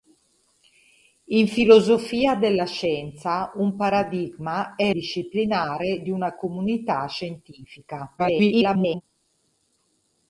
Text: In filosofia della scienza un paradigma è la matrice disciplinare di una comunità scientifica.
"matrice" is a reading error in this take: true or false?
true